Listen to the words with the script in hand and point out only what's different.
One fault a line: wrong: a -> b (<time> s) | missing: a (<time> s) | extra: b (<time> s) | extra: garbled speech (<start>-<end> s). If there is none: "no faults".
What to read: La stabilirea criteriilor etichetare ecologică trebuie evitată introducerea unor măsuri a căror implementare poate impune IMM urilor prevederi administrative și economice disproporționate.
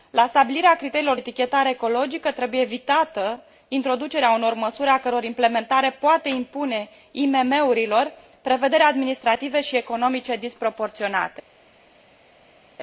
no faults